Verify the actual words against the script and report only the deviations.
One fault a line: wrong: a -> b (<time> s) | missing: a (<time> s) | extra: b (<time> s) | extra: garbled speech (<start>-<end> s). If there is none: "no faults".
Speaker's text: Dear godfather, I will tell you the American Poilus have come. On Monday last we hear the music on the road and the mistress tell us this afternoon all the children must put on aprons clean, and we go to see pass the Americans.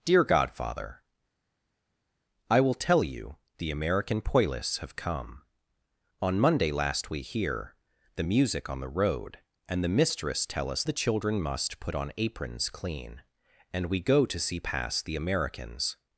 missing: this afternoon all (10.8 s)